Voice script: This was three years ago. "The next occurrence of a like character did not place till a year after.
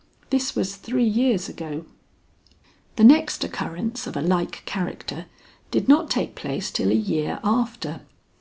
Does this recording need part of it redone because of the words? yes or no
yes